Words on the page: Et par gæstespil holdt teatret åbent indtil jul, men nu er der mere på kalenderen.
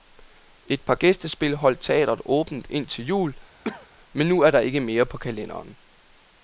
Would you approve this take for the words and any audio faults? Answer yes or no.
no